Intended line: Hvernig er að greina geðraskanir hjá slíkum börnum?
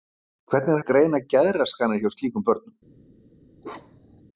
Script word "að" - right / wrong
right